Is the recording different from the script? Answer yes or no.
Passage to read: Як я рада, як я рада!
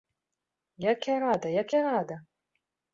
no